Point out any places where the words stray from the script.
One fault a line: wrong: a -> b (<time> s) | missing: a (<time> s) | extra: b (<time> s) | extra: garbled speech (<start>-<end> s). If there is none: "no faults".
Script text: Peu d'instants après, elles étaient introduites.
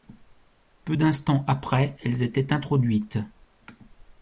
no faults